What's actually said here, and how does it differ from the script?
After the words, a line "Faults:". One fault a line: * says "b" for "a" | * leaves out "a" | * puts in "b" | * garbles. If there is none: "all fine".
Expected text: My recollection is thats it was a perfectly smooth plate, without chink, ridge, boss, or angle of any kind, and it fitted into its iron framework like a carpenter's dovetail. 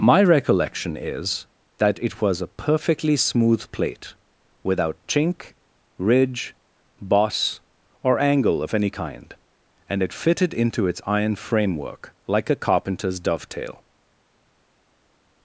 My recollection is that it was a perfectly smooth plate, without chink, ridge, boss, or angle of any kind, and it fitted into its iron framework like a carpenter's dovetail.
Faults:
* says "that" for "thats"